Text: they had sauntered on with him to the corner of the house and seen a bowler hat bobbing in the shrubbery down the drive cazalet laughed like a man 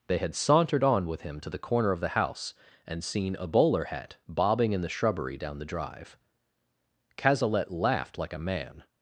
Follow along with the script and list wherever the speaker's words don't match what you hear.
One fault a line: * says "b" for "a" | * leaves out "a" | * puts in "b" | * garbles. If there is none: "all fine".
all fine